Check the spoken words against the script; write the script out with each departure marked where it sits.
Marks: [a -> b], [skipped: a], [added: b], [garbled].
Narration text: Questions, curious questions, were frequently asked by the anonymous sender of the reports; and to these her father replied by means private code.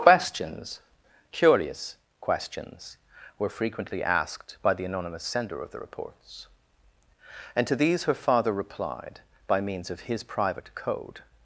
Questions, curious questions, were frequently asked by the anonymous sender of the reports; and to these her father replied by means [added: of his] private code.